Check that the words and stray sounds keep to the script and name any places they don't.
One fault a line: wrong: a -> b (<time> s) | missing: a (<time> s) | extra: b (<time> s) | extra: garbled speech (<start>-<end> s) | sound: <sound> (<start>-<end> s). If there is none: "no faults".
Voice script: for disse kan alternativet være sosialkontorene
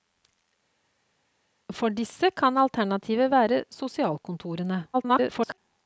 extra: garbled speech (4.9-5.6 s)